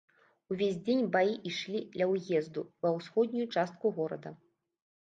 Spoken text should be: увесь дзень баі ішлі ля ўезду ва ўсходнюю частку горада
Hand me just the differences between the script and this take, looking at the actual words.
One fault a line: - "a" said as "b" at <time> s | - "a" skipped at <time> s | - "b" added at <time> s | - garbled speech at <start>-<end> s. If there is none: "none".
none